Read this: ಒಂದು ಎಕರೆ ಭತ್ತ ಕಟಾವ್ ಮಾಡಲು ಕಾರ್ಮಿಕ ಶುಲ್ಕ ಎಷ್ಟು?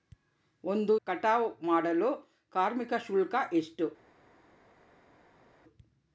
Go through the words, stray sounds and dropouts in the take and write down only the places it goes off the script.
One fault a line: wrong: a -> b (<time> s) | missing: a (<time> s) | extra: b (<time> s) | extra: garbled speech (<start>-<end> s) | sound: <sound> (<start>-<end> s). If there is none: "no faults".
missing: ಎಕರೆ ಭತ್ತ (0.9 s)